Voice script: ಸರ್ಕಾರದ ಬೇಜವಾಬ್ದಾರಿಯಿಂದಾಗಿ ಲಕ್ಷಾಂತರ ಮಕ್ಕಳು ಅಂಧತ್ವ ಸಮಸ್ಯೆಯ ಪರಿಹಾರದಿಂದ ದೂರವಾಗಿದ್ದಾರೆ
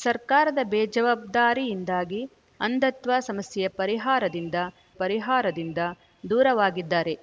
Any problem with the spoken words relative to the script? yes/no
yes